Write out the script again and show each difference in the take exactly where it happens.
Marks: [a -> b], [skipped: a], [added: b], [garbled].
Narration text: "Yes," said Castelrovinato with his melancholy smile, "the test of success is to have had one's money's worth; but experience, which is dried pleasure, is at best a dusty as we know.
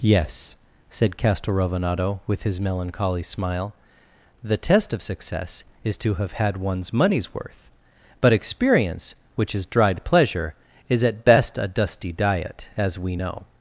"Yes," said Castelrovinato with his melancholy smile, "the test of success is to have had one's money's worth; but experience, which is dried pleasure, is at best a dusty [added: diet] as we know.